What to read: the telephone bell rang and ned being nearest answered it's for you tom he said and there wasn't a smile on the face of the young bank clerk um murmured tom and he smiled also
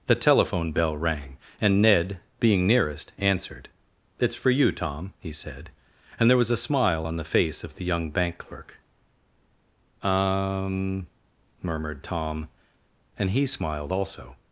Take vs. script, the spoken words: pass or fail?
fail